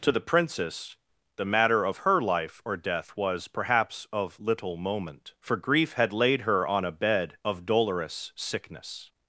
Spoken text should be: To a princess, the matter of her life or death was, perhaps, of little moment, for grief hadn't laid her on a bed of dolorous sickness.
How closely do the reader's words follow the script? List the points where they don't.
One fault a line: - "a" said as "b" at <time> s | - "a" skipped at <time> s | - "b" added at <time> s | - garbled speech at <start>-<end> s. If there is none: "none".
- "a" said as "the" at 0.1 s
- "hadn't" said as "had" at 5.9 s